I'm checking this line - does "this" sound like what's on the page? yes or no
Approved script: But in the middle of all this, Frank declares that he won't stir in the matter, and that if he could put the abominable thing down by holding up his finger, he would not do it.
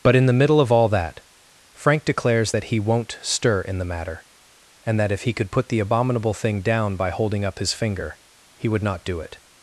no